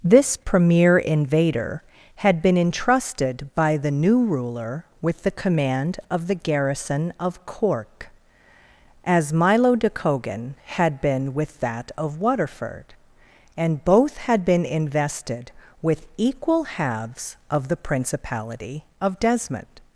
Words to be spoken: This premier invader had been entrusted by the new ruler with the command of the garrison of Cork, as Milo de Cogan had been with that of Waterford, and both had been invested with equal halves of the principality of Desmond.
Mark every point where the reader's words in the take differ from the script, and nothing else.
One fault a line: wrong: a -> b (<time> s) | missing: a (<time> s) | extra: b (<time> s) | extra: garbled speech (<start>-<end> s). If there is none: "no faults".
no faults